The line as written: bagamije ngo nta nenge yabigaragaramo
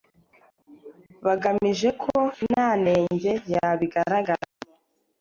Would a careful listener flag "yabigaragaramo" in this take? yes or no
no